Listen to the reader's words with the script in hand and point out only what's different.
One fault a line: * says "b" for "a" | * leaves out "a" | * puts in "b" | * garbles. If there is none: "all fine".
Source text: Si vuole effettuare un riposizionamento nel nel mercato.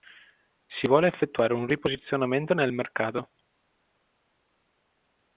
* leaves out "nel"